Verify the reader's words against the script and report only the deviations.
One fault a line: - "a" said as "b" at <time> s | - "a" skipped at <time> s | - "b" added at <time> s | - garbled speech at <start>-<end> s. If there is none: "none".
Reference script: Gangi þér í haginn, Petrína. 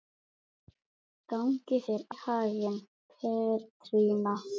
none